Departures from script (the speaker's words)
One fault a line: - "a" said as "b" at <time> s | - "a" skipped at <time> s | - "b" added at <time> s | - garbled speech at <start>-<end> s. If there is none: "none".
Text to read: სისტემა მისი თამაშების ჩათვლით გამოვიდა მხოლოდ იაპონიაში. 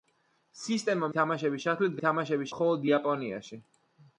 - "მისი" skipped at 1.1 s
- "გამოვიდა" said as "თამაშების" at 2.0 s